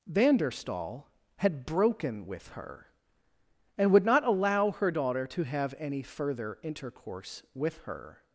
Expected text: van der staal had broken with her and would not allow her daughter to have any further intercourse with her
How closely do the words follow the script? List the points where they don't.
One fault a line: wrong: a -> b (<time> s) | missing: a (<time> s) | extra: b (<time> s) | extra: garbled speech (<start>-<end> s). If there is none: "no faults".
no faults